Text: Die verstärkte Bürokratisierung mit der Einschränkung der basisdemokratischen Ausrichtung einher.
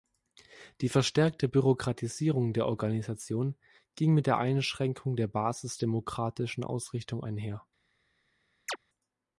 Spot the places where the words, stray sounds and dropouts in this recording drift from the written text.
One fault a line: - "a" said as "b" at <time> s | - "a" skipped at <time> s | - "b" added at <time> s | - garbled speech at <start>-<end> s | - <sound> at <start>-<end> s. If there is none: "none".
- "der Organisation ging" added at 2.5 s
- chirp at 8.7-8.8 s